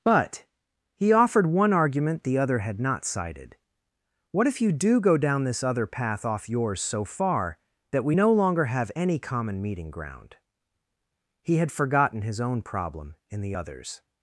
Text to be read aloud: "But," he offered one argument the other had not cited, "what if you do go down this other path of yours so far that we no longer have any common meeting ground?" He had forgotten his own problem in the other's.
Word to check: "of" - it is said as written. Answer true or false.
false